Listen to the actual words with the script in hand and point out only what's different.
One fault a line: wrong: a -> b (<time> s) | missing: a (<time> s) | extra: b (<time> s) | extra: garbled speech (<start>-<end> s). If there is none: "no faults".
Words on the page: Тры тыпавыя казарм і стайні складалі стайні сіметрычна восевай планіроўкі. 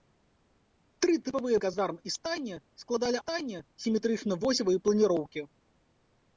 no faults